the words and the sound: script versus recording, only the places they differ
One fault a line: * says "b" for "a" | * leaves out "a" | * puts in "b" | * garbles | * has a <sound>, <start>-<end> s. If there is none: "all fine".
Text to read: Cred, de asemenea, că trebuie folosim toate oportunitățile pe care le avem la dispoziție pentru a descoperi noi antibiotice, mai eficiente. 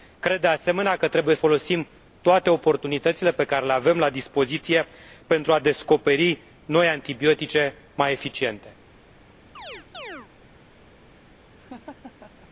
* has a chirp, 9.6-10.3 s
* has a laugh, 11.6-12.5 s